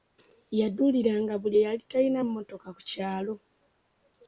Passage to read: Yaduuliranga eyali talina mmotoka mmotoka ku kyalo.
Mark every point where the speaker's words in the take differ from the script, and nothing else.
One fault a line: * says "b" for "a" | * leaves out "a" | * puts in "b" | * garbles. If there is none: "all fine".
* puts in "buli"
* leaves out "mmotoka"